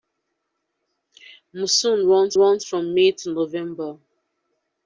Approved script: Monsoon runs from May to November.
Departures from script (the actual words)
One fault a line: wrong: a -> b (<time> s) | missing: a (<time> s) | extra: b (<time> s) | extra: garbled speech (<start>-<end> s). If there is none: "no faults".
extra: runs (2.4 s)